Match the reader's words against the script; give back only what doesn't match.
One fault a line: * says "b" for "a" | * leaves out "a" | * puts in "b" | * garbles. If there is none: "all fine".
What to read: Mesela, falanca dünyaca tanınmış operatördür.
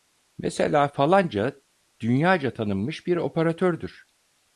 * puts in "bir"